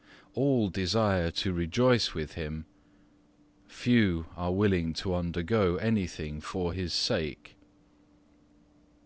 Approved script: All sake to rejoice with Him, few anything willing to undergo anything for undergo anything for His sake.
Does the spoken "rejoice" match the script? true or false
true